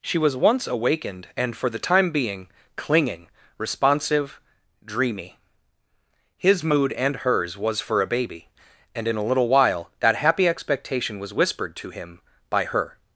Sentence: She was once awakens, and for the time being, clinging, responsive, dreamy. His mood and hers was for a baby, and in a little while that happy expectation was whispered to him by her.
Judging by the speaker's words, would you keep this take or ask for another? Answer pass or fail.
fail